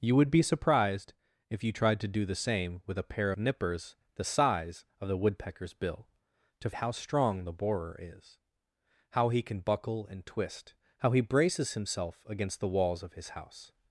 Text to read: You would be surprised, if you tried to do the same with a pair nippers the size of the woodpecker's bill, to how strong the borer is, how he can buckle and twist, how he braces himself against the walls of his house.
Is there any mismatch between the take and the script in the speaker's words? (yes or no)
no